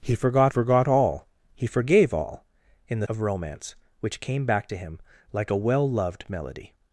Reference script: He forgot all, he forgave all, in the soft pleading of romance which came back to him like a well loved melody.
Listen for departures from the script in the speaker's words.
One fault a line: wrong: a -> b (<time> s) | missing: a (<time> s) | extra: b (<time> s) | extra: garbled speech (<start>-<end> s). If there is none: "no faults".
extra: forgot (0.5 s)
missing: soft pleading (3.1 s)